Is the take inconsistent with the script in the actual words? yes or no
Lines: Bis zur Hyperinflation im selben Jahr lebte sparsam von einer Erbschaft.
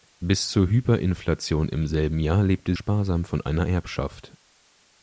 no